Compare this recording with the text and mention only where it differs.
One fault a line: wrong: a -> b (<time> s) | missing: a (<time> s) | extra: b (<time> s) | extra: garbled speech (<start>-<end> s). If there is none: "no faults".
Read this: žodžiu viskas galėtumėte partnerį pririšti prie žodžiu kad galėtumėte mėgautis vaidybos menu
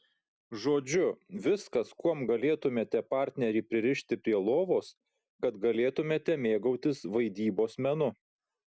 extra: kuom (2.0 s)
wrong: žodžiu -> lovos (4.5 s)